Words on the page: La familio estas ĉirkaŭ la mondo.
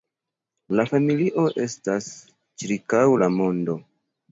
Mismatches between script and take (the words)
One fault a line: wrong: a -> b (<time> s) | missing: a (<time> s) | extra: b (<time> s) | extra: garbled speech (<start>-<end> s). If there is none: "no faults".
no faults